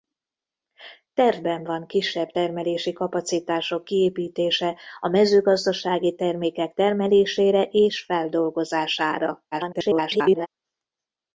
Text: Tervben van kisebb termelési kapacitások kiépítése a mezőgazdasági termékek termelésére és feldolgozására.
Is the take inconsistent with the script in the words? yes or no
yes